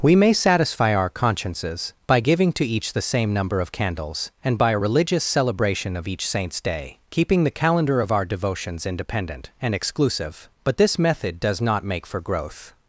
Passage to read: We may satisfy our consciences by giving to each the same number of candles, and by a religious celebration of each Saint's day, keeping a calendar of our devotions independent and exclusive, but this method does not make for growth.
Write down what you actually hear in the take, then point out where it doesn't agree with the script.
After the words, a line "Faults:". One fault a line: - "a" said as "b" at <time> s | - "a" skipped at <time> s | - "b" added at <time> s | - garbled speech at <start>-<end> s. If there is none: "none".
We may satisfy our consciences by giving to each the same number of candles, and by a religious celebration of each Saint's day, keeping the calendar of our devotions independent and exclusive, but this method does not make for growth.
Faults:
- "a" said as "the" at 7.4 s